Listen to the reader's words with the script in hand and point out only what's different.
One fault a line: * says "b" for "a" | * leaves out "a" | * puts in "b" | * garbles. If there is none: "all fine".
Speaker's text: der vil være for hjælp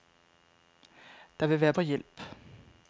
all fine